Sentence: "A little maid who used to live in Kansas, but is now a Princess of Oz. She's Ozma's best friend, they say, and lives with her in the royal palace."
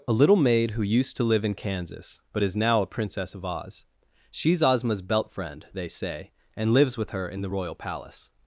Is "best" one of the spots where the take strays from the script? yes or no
yes